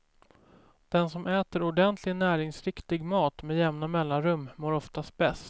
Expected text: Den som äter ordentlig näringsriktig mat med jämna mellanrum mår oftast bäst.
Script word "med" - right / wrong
right